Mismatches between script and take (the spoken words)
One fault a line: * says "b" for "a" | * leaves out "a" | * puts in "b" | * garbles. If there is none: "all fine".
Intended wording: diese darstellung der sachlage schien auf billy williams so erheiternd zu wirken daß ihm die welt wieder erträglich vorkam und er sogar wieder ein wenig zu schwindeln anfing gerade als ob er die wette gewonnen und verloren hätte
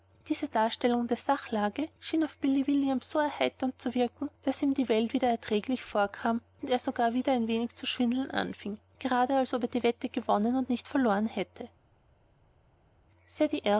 * puts in "nicht"